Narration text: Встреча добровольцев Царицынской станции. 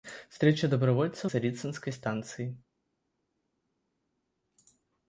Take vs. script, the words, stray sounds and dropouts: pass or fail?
pass